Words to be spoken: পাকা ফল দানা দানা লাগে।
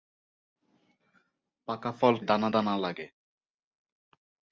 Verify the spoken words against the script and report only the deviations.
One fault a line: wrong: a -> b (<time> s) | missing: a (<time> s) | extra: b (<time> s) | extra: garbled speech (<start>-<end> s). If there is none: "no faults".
no faults